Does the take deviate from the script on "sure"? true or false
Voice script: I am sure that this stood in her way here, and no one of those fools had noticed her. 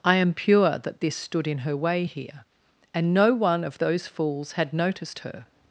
true